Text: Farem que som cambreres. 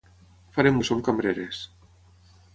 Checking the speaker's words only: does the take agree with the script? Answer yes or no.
yes